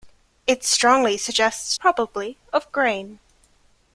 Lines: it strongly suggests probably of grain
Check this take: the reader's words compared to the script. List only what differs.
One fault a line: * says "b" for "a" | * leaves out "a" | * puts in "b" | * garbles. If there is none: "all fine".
all fine